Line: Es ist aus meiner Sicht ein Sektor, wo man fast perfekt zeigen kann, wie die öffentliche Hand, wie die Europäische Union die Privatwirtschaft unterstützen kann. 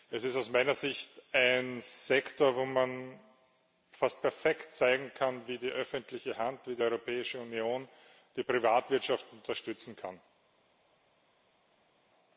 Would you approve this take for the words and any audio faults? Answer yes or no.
yes